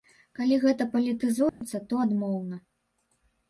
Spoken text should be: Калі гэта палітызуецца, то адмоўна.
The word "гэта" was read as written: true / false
true